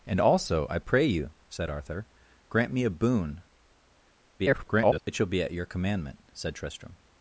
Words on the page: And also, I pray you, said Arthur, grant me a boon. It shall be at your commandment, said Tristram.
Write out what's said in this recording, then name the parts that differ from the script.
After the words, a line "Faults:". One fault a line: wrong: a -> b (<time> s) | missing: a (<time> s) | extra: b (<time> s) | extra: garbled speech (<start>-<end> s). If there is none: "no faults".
And also, I pray you, said Arthur, grant me a boon. [garbled] It shall be at your commandment, said Tristram.
Faults:
extra: garbled speech (4.4-5.0 s)